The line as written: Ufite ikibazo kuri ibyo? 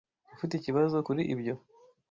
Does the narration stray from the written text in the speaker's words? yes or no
no